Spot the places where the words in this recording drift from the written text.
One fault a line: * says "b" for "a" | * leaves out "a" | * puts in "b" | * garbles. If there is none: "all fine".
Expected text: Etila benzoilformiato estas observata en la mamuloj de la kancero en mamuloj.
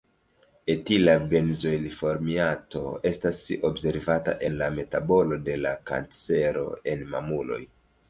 * says "metabolo" for "mamuloj"